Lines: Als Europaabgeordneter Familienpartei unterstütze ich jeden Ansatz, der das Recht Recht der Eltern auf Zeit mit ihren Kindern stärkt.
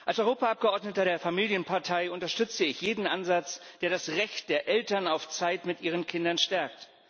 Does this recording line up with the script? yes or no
no